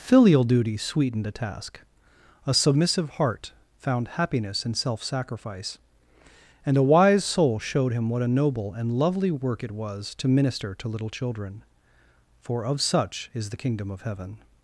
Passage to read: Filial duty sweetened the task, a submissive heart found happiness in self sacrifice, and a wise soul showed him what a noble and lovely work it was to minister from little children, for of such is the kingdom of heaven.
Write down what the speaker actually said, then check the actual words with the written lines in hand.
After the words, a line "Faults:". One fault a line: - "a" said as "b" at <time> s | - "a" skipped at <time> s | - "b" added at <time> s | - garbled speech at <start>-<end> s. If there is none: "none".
Filial duty sweetened the task, a submissive heart found happiness in self sacrifice, and a wise soul showed him what a noble and lovely work it was to minister to little children, for of such is the kingdom of heaven.
Faults:
- "from" said as "to" at 10.7 s